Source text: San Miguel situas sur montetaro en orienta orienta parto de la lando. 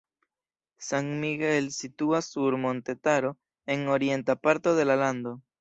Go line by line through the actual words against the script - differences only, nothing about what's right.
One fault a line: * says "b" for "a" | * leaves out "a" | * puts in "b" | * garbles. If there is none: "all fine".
* leaves out "orienta"